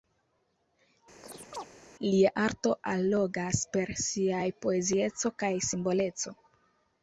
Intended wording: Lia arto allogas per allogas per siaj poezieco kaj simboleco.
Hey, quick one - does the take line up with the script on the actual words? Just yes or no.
no